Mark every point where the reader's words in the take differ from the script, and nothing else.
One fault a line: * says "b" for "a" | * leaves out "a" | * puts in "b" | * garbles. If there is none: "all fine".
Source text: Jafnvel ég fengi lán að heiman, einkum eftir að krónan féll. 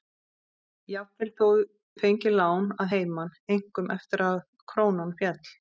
all fine